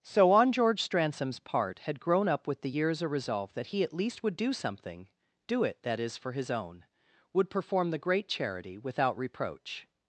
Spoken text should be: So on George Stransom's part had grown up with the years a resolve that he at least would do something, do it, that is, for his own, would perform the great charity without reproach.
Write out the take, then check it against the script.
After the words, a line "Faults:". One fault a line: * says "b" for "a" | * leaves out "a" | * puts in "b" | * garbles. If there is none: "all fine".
So on George Stransom's part had grown up with the years a resolve that he at least would do something, do it, that is, for his own, would perform the great charity without reproach.
Faults:
all fine